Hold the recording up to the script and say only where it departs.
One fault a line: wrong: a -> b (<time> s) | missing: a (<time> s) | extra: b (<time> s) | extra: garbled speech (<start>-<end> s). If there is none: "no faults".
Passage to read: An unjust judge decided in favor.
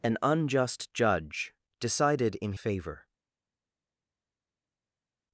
no faults